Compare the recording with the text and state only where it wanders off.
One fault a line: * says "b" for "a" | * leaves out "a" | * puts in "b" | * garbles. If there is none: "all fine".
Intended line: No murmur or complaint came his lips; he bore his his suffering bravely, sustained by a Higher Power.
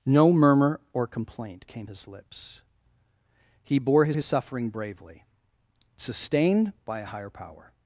all fine